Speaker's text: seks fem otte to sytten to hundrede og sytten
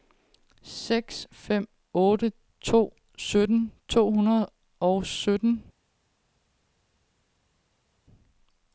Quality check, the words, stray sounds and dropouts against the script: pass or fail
pass